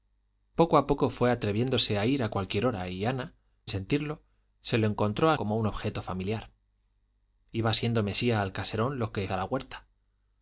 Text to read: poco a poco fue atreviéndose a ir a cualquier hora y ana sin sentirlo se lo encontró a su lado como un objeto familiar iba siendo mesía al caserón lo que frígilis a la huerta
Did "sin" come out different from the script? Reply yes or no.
yes